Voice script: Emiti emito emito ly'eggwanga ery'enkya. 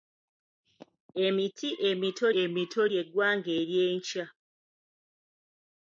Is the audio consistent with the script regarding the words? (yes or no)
yes